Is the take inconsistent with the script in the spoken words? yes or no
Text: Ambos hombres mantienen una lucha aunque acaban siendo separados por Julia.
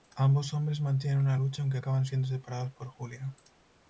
no